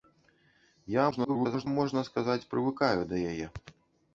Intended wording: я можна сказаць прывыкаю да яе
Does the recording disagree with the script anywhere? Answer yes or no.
yes